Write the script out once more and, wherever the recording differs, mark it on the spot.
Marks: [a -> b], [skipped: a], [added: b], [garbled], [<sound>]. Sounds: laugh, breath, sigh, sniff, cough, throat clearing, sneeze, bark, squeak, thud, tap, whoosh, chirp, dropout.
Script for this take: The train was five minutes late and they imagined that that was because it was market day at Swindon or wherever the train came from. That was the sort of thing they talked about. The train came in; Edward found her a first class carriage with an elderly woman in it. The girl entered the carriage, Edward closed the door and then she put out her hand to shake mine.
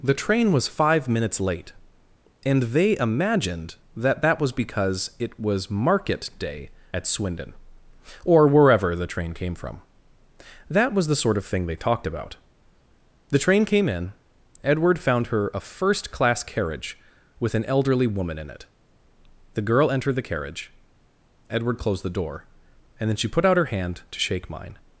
The train was five minutes late and they imagined that that was because it was market day at Swindon or wherever the train came from. That was the sort of thing they talked about. The train came in; Edward found her a first class carriage with an elderly woman in it. The girl entered the carriage, Edward closed the door and then she put out her hand to shake mine.